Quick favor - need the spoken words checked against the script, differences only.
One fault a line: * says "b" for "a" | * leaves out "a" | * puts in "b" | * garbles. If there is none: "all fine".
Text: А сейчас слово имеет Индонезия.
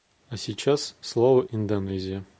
* leaves out "имеет"